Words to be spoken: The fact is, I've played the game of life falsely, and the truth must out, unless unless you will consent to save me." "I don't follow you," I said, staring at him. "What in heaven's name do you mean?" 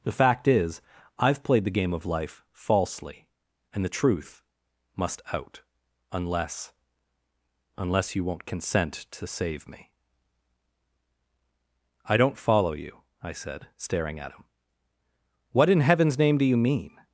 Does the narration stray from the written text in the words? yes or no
yes